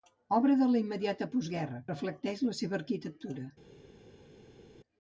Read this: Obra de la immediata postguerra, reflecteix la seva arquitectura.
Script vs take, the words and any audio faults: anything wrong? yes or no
no